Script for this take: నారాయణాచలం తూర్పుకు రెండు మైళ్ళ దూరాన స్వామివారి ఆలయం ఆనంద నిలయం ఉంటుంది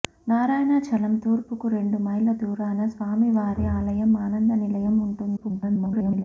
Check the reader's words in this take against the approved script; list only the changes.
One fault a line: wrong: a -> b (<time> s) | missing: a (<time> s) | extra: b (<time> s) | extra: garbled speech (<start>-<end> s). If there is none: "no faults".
extra: garbled speech (5.4-6.2 s)